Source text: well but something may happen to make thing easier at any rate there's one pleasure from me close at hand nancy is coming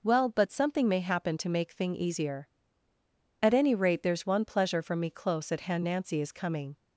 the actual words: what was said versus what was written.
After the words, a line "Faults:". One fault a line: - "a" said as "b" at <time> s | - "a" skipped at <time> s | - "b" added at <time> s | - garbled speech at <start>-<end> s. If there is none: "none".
well but something may happen to make thing easier at any rate there's one pleasure from me close at hand nancy is coming
Faults:
none